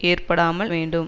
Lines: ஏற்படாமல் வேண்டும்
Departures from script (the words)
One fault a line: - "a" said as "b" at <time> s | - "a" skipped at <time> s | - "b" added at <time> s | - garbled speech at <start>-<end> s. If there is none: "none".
none